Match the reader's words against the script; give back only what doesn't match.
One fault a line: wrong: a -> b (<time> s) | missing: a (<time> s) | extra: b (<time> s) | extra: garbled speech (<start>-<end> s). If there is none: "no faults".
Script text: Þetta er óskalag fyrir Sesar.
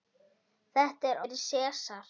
missing: óskalag (1.2 s)